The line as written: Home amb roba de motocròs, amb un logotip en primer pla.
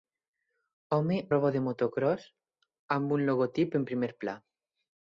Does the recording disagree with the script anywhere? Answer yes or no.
yes